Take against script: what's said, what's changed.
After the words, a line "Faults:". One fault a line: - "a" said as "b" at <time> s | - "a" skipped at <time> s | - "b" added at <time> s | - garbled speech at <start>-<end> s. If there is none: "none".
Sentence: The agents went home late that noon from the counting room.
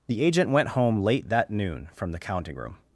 The agent went home late that noon from the counting room.
Faults:
- "agents" said as "agent" at 0.2 s